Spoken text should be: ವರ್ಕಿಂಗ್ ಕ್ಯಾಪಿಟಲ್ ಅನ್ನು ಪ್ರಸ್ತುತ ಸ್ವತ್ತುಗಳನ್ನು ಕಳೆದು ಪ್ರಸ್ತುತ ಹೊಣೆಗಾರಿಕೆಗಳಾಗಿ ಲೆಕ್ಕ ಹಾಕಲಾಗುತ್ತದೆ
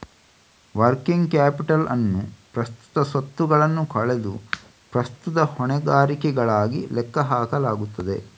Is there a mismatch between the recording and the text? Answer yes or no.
no